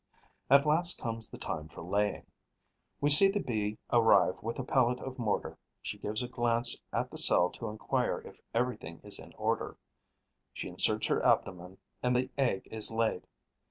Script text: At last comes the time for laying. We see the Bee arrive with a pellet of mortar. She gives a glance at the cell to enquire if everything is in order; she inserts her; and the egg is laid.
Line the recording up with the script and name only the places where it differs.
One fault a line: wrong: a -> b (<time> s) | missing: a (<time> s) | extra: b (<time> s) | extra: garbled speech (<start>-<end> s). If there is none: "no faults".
extra: abdomen (11.2 s)